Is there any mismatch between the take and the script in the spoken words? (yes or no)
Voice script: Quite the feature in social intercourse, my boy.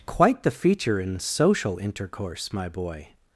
no